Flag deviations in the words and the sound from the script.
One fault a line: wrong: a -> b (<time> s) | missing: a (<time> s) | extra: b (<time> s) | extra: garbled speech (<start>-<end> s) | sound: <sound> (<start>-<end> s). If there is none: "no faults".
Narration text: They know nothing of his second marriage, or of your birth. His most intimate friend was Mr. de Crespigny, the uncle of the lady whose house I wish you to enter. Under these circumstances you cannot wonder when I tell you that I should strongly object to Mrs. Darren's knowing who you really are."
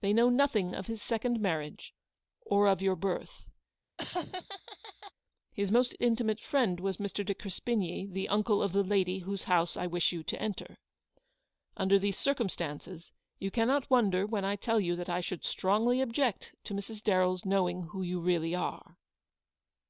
sound: laugh (4.0-5.1 s)